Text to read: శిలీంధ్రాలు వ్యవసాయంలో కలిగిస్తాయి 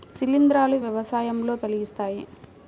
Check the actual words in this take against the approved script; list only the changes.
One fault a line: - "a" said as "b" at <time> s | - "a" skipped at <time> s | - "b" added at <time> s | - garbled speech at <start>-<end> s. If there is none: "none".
none